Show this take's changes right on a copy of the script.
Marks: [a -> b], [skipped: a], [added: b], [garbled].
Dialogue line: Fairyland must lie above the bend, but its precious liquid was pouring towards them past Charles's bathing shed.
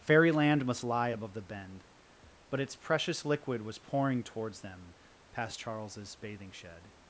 Fairyland must lie above the bend, but its precious liquid was pouring towards them past Charles's bathing shed.